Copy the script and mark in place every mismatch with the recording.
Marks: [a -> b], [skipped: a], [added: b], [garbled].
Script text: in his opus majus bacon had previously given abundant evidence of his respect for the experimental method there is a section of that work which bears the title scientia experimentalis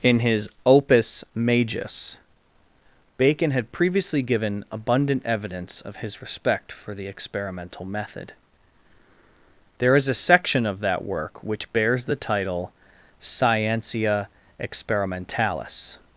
in his opus majus bacon had previously given abundant evidence of his respect for the experimental method there is a section of that work which bears the title scientia experimentalis